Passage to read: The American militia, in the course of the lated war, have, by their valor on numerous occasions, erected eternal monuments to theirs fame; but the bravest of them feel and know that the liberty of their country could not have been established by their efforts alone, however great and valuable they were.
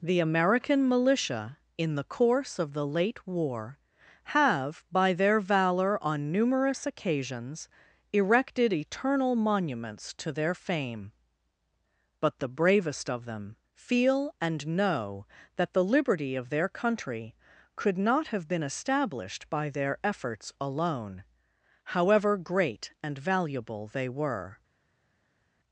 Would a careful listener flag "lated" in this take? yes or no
yes